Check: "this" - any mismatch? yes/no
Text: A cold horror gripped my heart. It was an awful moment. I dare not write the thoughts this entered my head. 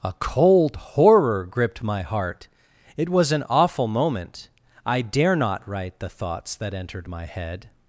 yes